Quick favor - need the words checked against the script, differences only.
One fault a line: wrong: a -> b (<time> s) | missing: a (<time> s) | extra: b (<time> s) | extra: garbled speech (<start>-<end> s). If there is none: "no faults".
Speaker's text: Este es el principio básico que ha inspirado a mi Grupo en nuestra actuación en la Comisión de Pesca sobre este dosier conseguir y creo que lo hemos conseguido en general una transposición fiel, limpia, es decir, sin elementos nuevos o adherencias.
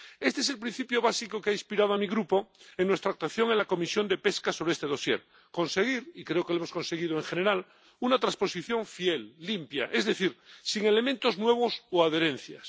no faults